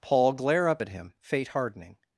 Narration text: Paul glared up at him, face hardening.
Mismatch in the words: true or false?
true